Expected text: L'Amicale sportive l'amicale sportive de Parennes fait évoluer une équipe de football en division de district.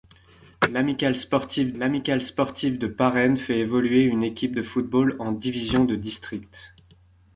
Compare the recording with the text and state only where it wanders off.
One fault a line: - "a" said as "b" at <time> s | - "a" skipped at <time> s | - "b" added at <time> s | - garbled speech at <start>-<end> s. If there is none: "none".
none